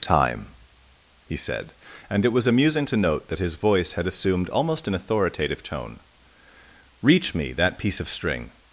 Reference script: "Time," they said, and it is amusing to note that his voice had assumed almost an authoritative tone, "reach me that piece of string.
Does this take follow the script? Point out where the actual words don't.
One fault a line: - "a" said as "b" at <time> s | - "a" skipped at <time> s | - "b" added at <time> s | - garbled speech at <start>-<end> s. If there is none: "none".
- "they" said as "he" at 1.3 s
- "is" said as "was" at 2.3 s